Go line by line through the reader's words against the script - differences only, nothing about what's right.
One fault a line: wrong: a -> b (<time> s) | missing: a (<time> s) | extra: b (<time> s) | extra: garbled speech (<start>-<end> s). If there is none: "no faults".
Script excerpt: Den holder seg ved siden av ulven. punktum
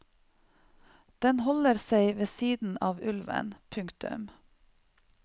no faults